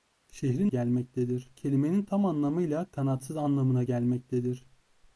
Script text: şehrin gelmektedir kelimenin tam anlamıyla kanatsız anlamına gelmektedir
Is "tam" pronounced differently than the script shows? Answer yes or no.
no